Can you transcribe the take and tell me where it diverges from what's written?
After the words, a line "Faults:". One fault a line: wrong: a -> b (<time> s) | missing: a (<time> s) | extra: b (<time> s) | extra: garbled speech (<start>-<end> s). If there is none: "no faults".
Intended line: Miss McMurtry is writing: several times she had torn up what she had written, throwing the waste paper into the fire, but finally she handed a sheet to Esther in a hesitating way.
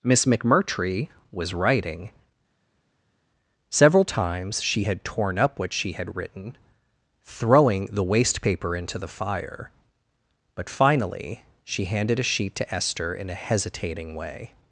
Miss McMurtry was writing: several times she had torn up what she had written, throwing the waste paper into the fire, but finally she handed a sheet to Esther in a hesitating way.
Faults:
wrong: is -> was (1.3 s)